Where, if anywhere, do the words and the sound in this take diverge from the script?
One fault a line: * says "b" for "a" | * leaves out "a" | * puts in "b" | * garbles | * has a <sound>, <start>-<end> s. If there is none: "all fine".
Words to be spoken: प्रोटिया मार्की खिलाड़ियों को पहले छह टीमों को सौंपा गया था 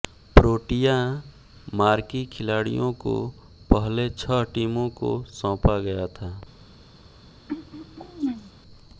* has a throat clearing, 7.5-8.5 s